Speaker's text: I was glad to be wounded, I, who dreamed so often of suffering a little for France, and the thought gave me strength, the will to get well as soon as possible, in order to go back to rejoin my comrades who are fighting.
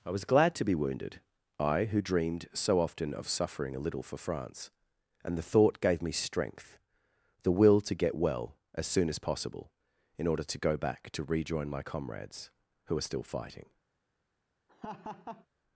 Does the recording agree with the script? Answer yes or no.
no